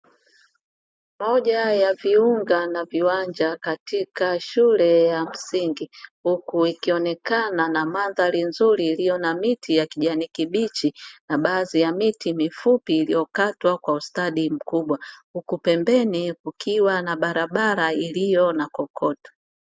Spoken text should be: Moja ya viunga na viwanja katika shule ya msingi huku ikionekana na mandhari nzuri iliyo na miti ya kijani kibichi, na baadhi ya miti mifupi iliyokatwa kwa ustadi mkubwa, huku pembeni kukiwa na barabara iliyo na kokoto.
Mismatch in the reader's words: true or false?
false